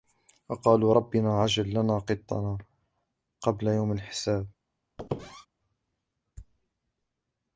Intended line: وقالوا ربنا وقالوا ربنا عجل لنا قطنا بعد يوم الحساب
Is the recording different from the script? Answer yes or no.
yes